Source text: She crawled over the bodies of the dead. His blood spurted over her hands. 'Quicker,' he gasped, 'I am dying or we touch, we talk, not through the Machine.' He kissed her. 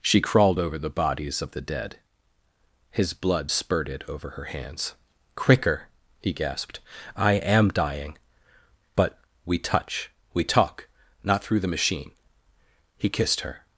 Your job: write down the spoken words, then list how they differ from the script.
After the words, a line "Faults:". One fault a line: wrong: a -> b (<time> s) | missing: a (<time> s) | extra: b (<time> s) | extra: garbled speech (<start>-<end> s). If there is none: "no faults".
She crawled over the bodies of the dead. His blood spurted over her hands. 'Quicker,' he gasped, 'I am dying but we touch, we talk, not through the Machine.' He kissed her.
Faults:
wrong: or -> but (9.0 s)